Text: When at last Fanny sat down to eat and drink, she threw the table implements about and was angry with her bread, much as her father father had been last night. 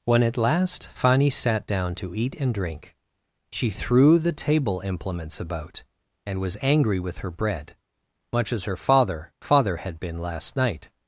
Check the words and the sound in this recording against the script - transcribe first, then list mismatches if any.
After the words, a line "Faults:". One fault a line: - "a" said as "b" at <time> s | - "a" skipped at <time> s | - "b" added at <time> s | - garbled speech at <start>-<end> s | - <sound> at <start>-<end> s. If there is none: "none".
When at last Fanny sat down to eat and drink, she threw the table implements about and was angry with her bread, much as her father father had been last night.
Faults:
none